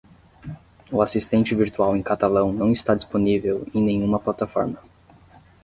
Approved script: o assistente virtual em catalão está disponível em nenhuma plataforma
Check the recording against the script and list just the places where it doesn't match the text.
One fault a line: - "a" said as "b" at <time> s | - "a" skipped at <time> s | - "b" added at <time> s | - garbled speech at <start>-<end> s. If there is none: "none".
- "não" added at 2.5 s